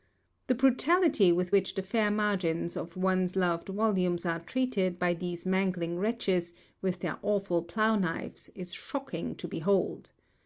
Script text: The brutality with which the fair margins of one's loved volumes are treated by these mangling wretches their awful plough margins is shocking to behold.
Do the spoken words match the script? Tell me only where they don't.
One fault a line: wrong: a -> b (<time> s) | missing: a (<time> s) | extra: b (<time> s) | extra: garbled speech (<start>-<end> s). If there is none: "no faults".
extra: with (6.8 s)
wrong: margins -> knives (8.0 s)